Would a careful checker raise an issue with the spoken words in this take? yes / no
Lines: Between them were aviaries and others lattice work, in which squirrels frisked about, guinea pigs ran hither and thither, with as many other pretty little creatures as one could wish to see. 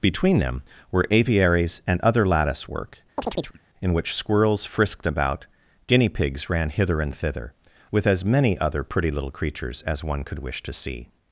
yes